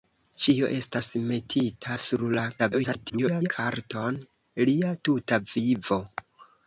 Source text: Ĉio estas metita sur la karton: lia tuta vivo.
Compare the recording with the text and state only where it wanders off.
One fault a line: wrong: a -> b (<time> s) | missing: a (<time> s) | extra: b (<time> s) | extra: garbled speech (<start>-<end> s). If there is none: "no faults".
extra: garbled speech (2.6-3.5 s)